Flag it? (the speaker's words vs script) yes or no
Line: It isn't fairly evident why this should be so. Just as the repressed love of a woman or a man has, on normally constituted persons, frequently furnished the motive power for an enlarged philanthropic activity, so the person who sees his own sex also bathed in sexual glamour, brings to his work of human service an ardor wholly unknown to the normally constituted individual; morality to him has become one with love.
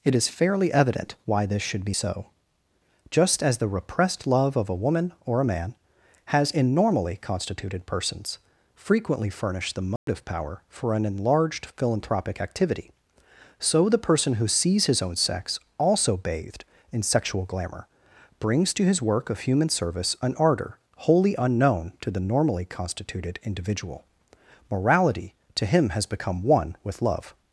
yes